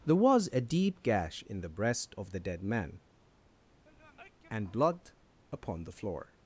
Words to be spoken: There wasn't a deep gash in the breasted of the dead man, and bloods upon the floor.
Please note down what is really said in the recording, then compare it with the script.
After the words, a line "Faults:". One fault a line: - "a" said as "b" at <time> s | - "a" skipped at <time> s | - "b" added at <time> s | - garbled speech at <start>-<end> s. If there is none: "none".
There was a deep gash in the breast of the dead man, and blood upon the floor.
Faults:
- "wasn't" said as "was" at 0.1 s
- "breasted" said as "breast" at 1.7 s
- "bloods" said as "blood" at 4.7 s